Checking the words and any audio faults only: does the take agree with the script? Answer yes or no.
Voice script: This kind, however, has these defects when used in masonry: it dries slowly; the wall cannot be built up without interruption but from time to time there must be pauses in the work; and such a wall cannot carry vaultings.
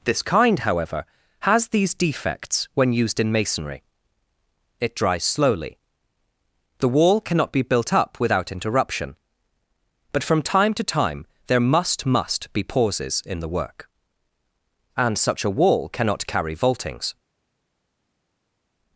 no